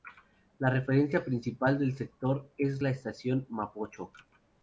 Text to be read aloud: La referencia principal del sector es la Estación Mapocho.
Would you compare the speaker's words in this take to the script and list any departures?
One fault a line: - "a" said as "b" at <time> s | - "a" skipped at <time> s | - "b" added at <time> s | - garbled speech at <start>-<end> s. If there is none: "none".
none